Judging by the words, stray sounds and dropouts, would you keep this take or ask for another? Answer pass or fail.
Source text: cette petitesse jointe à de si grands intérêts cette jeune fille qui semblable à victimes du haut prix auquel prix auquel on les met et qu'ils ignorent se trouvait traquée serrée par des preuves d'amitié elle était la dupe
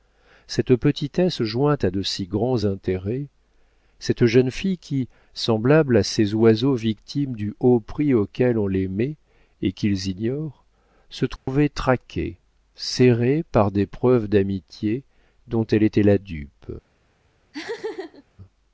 fail